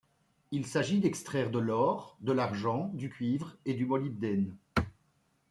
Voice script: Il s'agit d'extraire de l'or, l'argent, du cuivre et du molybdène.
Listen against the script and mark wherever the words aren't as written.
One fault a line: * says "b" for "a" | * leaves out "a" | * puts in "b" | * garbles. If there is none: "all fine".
* puts in "de"